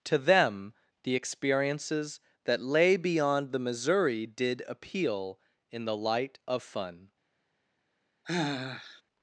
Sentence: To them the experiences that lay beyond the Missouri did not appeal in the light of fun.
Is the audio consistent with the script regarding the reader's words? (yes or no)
no